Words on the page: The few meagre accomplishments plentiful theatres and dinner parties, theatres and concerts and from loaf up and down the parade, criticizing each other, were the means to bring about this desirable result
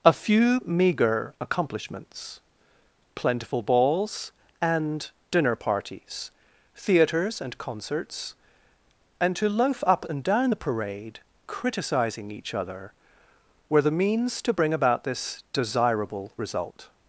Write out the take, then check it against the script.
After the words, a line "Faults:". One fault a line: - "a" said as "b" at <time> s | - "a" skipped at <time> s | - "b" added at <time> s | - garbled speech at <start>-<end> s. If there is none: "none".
A few meagre accomplishments plentiful balls and dinner parties, theatres and concerts and to loaf up and down the parade, criticizing each other, were the means to bring about this desirable result
Faults:
- "The" said as "A" at 0.0 s
- "theatres" said as "balls" at 3.6 s
- "from" said as "to" at 9.4 s